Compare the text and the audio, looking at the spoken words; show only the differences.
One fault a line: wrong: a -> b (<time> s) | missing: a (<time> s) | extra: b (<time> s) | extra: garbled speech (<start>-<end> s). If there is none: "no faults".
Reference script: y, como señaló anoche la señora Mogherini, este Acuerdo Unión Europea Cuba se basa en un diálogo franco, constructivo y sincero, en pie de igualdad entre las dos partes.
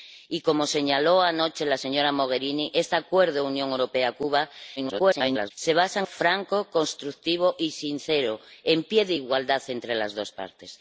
extra: garbled speech (4.8-5.5 s)
missing: un diálogo (6.1 s)